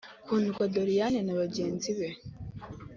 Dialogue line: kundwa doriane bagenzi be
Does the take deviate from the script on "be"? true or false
false